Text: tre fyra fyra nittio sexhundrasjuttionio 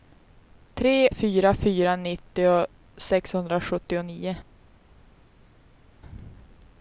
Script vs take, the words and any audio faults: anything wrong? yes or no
no